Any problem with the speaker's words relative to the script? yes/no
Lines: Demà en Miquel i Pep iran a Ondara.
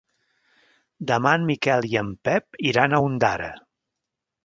yes